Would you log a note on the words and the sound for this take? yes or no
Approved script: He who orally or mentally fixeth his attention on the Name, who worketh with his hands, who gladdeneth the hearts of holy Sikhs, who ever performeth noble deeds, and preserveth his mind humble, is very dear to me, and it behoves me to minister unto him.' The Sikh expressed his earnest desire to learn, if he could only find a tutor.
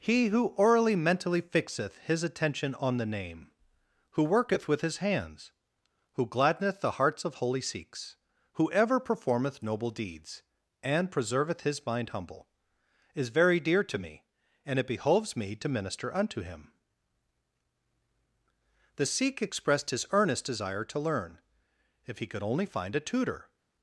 yes